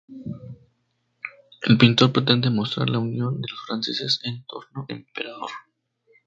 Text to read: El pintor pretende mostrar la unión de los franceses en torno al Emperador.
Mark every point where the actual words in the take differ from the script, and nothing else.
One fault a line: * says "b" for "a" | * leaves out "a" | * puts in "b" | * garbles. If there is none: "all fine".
* leaves out "al"